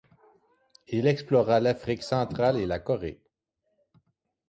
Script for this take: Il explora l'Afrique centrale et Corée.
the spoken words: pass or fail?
fail